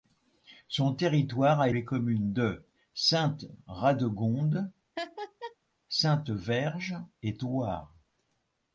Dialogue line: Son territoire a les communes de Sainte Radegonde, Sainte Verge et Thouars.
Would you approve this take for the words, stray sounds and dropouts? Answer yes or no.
no